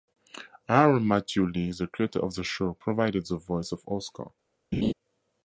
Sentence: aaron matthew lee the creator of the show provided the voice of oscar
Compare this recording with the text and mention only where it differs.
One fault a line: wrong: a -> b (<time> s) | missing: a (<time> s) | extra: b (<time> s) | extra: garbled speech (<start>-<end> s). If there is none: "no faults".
no faults